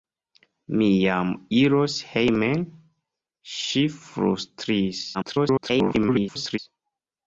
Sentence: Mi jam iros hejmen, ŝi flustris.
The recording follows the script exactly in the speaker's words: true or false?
false